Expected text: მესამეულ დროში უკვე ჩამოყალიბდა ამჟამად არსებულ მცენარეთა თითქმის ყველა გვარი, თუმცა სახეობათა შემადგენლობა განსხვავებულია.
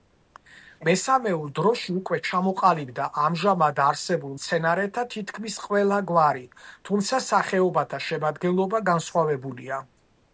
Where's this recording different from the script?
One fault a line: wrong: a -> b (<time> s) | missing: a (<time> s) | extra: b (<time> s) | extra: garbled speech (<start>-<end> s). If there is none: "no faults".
no faults